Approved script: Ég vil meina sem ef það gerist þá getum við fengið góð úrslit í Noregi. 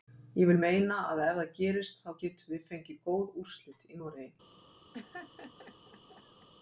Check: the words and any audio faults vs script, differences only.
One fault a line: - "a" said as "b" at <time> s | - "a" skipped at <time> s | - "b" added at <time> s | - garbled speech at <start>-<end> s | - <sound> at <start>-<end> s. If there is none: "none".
- "sem" said as "að" at 1.1 s
- laugh at 4.9-6.5 s